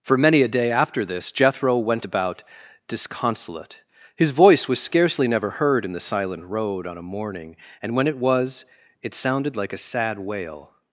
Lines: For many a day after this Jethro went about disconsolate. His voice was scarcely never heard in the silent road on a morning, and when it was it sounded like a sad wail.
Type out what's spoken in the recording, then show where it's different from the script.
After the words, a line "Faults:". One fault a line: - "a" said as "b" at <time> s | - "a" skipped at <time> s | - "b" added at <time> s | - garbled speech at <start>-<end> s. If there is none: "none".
For many a day after this Jethro went about disconsolate. His voice was scarcely never heard in the silent road on a morning, and when it was it sounded like a sad wail.
Faults:
none